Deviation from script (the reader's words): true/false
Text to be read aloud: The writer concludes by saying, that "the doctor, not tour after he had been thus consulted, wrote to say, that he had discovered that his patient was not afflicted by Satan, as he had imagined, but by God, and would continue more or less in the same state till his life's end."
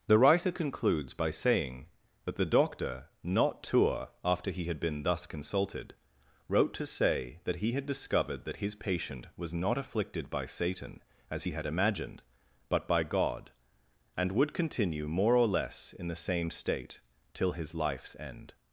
false